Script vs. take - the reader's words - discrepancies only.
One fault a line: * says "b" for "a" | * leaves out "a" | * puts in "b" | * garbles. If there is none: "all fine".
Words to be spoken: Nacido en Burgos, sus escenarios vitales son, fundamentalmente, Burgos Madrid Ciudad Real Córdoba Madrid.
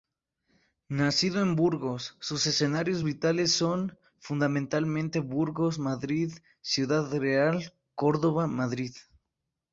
all fine